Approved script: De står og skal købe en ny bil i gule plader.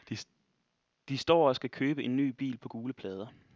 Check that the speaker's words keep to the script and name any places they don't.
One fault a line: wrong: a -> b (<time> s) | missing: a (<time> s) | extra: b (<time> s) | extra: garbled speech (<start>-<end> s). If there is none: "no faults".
wrong: i -> på (2.6 s)